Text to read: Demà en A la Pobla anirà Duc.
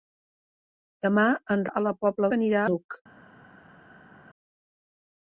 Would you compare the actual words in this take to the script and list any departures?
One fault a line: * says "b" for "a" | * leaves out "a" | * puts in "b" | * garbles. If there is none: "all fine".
all fine